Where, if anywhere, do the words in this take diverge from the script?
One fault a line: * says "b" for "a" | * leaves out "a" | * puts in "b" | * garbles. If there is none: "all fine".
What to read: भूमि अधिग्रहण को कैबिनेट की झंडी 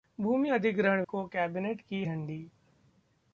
all fine